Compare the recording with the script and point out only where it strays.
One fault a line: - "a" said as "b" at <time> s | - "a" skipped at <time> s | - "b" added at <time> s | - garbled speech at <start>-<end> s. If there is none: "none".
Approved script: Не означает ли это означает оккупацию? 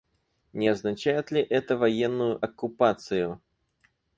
- "означает" said as "военную" at 1.8 s